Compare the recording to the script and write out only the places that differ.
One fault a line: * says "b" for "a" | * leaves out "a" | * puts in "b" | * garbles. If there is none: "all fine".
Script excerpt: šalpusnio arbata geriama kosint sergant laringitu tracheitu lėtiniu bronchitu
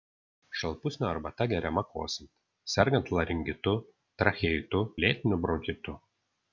all fine